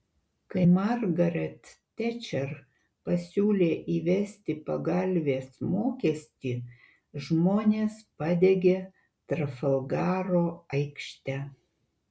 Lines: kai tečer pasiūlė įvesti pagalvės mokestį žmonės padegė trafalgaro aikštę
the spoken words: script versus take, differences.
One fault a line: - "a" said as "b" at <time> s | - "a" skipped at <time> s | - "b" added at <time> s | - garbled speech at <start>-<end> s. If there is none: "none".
- "margaret" added at 0.7 s